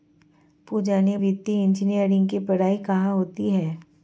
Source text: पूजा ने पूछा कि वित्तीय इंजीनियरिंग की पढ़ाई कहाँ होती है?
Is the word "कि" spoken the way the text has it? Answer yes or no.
no